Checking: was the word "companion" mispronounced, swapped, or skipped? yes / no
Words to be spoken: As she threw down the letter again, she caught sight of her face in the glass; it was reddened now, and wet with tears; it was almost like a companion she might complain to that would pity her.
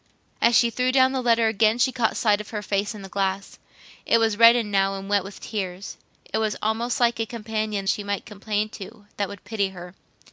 no